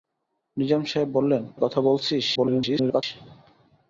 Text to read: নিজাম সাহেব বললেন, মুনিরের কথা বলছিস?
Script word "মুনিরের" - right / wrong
wrong